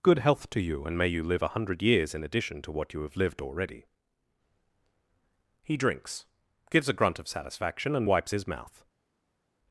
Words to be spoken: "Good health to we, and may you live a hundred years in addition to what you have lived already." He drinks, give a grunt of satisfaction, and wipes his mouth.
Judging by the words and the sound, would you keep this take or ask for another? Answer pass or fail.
fail